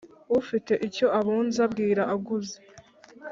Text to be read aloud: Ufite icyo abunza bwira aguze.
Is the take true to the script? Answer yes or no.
yes